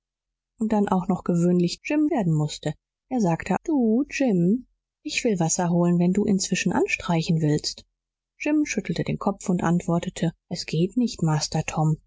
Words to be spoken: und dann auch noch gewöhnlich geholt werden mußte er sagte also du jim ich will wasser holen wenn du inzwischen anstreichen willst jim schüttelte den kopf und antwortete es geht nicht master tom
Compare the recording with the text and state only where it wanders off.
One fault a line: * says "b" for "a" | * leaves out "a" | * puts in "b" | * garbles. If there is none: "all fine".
* says "jim" for "geholt"
* leaves out "also"